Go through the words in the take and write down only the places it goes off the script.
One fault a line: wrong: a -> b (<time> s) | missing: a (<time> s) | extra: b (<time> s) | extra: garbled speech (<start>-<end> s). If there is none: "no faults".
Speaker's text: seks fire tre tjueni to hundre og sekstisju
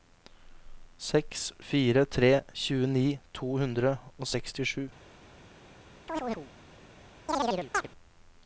no faults